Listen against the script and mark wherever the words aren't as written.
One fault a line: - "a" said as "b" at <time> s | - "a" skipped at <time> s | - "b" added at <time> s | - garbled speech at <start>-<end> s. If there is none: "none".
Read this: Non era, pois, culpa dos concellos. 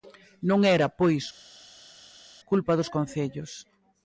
none